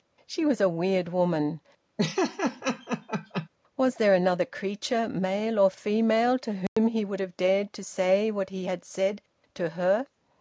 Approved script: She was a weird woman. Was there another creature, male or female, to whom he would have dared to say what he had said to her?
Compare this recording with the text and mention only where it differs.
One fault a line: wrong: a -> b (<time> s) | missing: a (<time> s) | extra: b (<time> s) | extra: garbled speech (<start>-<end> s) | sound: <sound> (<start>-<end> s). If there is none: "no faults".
sound: laugh (2.0-3.5 s)
sound: dropout (6.7-6.8 s)